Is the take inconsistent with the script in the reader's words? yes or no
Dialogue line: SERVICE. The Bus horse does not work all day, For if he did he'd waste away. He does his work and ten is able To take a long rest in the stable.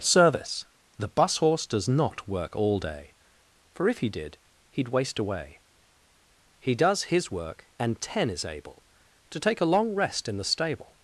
no